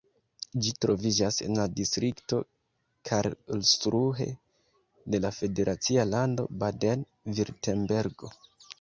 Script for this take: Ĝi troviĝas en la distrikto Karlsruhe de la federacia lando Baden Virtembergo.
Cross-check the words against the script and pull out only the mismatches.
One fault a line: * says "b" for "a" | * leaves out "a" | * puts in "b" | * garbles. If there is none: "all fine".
all fine